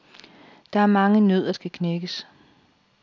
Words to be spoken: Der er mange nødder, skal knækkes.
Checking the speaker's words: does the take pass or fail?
pass